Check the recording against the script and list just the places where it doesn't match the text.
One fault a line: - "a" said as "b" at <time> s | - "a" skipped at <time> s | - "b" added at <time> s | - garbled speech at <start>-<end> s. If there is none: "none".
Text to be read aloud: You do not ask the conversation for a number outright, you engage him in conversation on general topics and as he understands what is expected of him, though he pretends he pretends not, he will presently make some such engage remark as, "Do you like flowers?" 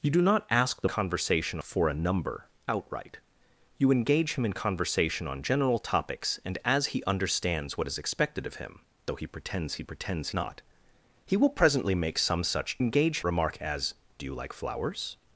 none